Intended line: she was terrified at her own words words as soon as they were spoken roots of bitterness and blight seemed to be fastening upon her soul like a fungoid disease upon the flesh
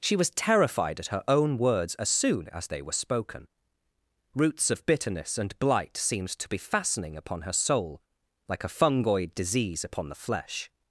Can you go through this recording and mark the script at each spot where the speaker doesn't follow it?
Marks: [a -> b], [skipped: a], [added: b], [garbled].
she was terrified at her own words [skipped: words] as soon as they were spoken roots of bitterness and blight seemed to be fastening upon her soul like a fungoid disease upon the flesh